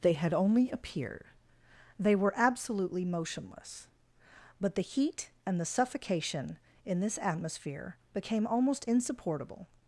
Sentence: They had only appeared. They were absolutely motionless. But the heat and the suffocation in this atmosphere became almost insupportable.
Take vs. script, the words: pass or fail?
pass